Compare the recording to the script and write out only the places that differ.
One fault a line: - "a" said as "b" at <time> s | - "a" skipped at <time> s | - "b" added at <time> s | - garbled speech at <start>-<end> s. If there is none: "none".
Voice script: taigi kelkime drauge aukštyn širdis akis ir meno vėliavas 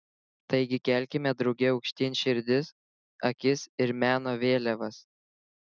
none